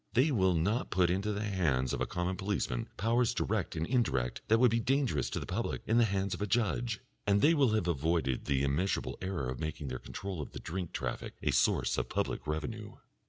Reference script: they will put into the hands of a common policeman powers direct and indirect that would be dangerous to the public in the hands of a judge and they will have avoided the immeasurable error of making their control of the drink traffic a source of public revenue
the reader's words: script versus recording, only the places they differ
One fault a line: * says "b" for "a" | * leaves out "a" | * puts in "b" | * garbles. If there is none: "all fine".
* puts in "not"